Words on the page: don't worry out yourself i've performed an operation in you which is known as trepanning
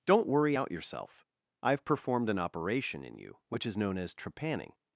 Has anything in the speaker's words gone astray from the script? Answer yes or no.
no